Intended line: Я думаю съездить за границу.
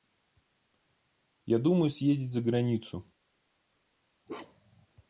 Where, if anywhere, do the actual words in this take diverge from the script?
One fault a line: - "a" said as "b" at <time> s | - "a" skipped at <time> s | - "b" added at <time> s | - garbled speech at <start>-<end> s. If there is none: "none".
none